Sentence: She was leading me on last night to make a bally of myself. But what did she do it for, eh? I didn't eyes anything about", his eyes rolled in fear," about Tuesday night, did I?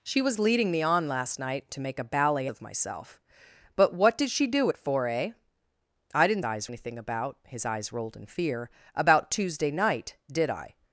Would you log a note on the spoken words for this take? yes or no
no